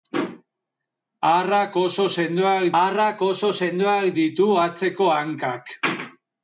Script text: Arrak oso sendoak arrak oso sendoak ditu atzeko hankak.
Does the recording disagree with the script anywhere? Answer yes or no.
no